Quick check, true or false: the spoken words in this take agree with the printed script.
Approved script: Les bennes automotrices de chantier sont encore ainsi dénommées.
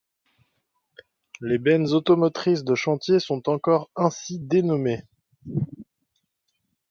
true